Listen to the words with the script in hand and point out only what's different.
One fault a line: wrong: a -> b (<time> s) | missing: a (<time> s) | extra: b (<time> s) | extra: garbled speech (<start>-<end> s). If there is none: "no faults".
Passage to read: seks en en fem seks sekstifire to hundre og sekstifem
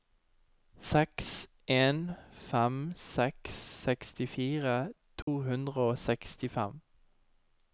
missing: en (2.0 s)